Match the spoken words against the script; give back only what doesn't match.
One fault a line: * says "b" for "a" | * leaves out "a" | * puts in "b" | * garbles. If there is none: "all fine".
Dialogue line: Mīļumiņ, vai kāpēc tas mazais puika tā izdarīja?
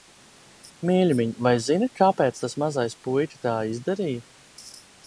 * puts in "zini"